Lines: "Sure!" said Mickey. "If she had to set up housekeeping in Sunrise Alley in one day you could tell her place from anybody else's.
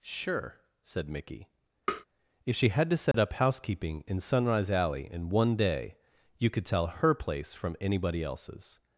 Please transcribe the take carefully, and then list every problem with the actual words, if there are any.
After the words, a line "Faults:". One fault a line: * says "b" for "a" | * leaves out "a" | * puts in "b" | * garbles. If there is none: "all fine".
"Sure!" said Mickey. "If she had to set up housekeeping in Sunrise Alley in one day you could tell her place from anybody else's.
Faults:
all fine